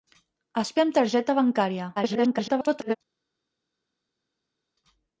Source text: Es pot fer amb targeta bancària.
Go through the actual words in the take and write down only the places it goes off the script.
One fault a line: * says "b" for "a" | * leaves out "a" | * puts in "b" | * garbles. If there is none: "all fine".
* leaves out "pot"
* garbles